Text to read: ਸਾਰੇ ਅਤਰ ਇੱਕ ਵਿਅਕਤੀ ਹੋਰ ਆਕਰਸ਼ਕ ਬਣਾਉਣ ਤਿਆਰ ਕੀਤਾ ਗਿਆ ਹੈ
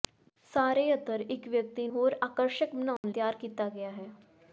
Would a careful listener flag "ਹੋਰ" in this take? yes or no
no